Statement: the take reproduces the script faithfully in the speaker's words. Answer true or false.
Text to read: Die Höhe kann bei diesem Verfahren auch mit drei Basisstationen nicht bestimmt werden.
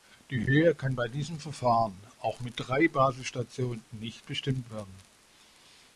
true